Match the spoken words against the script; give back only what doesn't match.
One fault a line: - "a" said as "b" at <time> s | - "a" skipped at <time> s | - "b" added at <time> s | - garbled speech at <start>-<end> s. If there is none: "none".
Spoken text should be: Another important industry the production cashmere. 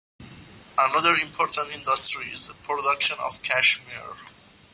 - "is" added at 2.3 s
- "of" added at 3.2 s